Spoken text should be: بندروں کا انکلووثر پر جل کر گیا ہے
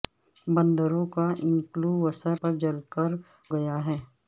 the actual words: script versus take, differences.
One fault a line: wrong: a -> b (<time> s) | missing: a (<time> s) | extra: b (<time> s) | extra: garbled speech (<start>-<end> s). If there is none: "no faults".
no faults